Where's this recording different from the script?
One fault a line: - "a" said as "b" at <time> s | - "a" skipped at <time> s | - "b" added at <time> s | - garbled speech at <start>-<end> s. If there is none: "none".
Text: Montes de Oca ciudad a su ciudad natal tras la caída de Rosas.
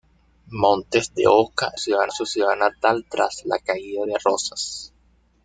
none